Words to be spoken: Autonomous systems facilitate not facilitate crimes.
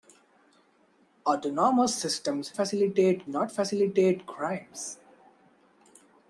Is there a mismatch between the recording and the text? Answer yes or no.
no